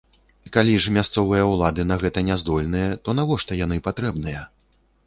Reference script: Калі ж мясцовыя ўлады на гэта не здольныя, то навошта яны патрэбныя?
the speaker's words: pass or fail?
pass